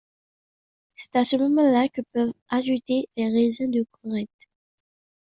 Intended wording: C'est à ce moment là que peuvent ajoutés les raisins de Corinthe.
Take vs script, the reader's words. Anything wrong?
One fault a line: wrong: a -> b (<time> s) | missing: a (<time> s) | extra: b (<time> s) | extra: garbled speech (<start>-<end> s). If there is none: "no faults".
no faults